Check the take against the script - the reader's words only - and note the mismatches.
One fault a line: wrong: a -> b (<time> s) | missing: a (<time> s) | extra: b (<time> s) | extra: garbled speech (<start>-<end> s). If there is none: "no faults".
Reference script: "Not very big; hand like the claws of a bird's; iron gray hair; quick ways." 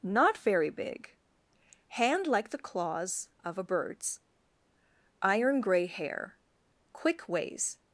no faults